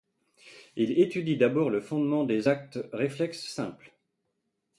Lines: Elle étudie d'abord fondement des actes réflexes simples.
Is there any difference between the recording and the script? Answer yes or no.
yes